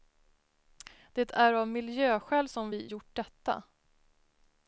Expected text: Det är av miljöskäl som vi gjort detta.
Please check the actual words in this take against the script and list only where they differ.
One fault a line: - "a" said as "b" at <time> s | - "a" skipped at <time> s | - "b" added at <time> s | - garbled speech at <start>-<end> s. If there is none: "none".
none